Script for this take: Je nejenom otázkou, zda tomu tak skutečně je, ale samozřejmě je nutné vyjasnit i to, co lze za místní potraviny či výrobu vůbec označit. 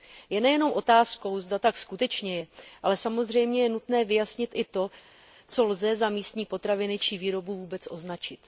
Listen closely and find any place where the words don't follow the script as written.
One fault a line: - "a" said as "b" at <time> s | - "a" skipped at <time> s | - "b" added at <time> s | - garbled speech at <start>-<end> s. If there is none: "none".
- "tomu" skipped at 1.6 s